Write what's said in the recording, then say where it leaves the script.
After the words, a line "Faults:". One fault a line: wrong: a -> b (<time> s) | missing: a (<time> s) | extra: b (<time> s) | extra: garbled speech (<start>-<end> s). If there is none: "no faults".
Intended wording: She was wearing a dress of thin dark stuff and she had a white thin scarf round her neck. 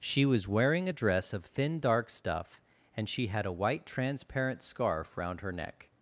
She was wearing a dress of thin dark stuff and she had a white transparent scarf round her neck.
Faults:
wrong: thin -> transparent (3.8 s)